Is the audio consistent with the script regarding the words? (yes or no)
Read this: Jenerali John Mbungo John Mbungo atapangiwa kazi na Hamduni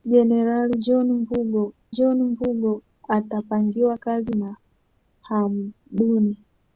yes